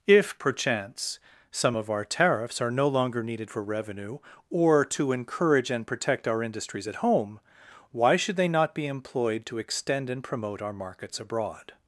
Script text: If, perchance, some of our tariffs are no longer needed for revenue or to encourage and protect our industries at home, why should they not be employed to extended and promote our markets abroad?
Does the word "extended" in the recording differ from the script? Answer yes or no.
yes